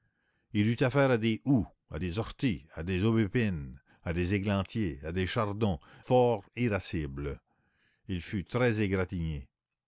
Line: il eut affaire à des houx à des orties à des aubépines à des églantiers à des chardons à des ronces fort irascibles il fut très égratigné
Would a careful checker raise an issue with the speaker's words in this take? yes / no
yes